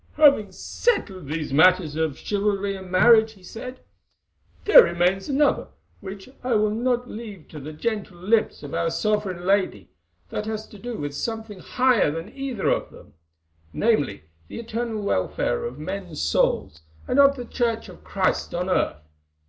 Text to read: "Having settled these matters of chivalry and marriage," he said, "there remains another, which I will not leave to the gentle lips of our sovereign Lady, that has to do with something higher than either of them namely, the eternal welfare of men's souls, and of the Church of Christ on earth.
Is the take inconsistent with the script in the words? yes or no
no